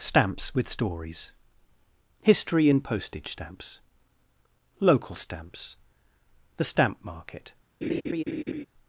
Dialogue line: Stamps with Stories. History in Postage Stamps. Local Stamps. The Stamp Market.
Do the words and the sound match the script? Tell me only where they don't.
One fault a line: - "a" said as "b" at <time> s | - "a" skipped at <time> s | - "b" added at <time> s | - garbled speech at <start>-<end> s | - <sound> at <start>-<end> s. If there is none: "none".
- laugh at 7.8-8.6 s